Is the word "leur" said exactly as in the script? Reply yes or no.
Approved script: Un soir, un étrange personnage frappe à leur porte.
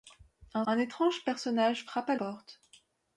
no